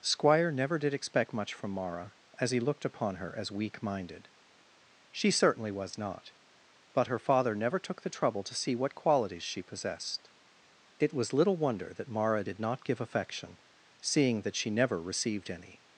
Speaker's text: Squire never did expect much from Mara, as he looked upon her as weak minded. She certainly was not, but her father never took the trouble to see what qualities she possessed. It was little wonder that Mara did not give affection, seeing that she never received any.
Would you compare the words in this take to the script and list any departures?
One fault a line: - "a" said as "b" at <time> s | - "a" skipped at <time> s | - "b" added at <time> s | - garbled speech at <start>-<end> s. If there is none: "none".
none